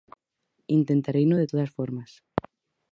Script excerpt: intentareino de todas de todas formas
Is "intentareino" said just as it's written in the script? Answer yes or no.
yes